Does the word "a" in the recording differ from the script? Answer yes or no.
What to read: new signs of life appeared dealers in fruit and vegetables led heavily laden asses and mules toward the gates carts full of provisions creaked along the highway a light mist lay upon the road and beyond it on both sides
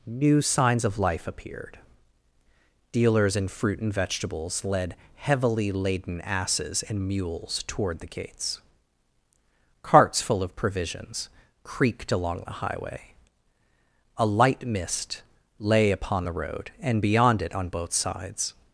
no